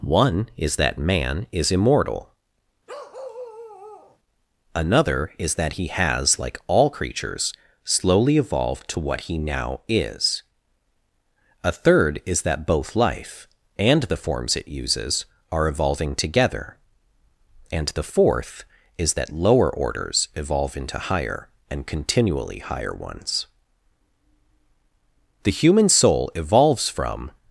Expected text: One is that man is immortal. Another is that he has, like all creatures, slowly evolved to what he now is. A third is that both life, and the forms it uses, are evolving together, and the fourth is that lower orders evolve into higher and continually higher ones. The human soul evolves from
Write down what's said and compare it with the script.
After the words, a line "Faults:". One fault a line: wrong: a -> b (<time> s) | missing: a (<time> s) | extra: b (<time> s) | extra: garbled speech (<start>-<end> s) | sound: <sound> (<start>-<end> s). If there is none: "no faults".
One is that man is immortal. Another is that he has, like all creatures, slowly evolved to what he now is. A third is that both life, and the forms it uses, are evolving together, and the fourth is that lower orders evolve into higher and continually higher ones. The human soul evolves from
Faults:
sound: bark (2.9-4.2 s)